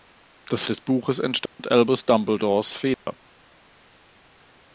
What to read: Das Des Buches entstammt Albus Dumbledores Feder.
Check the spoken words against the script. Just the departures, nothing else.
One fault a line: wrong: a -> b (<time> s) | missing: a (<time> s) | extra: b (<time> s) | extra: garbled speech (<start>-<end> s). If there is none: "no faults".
no faults